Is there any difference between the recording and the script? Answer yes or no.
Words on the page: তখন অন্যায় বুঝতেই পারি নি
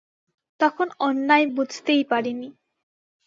no